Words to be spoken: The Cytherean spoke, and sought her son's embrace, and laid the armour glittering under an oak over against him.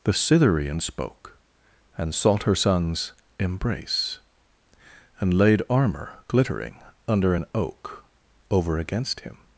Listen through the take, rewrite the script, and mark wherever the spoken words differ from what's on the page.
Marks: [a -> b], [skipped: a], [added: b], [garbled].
The Cytherean spoke, and sought her son's embrace, and laid [skipped: the] armour glittering under an oak over against him.